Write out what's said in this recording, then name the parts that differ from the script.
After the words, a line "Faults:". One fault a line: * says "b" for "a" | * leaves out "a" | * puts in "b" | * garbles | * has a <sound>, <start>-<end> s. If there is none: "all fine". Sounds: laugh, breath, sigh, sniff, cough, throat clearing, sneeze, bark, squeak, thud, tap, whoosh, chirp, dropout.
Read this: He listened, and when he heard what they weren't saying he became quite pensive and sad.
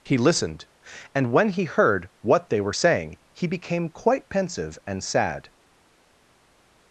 He listened, and when he heard what they were saying he became quite pensive and sad.
Faults:
* says "were" for "weren't"